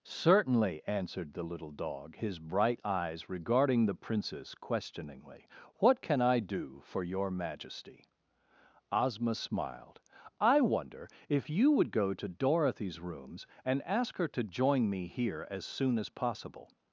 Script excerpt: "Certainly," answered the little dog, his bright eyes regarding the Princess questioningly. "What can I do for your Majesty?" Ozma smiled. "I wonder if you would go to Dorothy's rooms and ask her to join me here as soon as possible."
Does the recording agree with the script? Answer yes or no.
yes